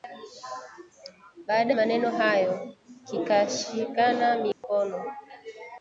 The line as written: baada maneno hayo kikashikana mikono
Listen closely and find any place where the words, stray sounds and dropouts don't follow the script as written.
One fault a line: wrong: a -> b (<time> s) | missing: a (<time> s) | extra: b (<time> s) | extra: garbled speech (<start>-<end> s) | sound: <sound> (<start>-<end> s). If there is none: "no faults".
sound: dropout (4.5-4.6 s)